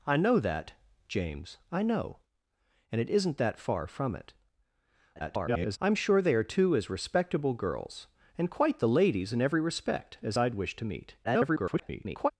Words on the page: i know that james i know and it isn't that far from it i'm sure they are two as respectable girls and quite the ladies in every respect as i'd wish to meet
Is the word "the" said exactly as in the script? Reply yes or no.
yes